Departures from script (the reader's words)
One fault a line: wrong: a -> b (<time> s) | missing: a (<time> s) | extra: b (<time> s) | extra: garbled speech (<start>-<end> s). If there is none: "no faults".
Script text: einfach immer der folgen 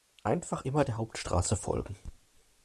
extra: hauptstraße (1.0 s)